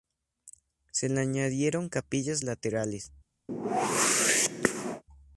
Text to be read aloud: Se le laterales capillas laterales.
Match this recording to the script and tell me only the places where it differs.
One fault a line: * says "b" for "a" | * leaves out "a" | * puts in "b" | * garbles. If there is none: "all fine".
* says "añadieron" for "laterales"